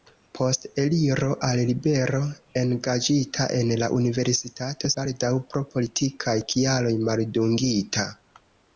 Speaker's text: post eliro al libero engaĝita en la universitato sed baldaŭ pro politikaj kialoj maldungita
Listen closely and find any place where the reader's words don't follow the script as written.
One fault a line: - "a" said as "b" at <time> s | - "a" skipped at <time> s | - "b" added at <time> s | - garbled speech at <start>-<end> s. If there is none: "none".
- "sed" skipped at 4.9 s